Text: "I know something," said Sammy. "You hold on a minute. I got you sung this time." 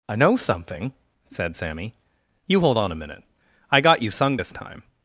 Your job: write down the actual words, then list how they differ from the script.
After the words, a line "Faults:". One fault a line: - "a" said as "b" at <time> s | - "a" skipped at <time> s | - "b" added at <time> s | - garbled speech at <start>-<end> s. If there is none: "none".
"I know something," said Sammy. "You hold on a minute. I got you sung this time."
Faults:
none